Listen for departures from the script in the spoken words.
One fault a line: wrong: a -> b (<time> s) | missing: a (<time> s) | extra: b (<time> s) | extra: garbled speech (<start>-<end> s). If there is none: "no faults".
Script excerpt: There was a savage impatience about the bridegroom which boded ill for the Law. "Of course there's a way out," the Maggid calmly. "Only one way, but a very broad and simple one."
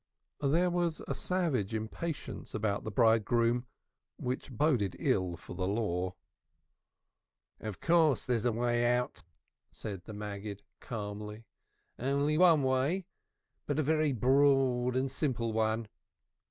extra: said (9.7 s)